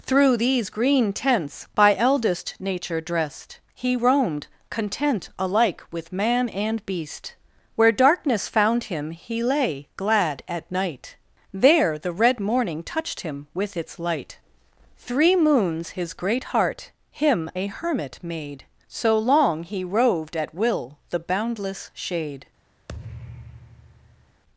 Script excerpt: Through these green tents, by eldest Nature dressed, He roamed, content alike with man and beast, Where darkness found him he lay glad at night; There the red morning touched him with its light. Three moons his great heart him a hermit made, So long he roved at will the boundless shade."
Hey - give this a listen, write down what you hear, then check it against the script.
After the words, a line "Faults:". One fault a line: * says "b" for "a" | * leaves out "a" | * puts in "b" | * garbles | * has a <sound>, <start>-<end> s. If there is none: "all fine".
Through these green tents, by eldest Nature dressed, He roamed, content alike with man and beast, Where darkness found him he lay glad at night; There the red morning touched him with its light. Three moons his great heart him a hermit made, So long he roved at will the boundless shade."
Faults:
* has a thud, 22.9-24.4 s